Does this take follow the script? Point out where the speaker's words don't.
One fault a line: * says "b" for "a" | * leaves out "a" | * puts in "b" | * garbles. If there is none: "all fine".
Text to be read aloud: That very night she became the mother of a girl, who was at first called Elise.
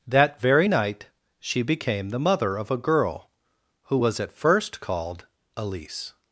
all fine